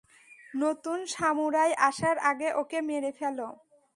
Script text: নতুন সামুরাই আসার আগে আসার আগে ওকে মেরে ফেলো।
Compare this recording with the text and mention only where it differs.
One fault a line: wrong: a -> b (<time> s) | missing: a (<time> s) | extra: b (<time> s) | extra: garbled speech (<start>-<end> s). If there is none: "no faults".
missing: আসার আগে (2.5 s)